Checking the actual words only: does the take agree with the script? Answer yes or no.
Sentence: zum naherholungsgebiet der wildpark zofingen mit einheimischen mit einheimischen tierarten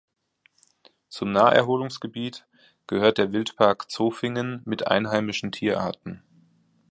no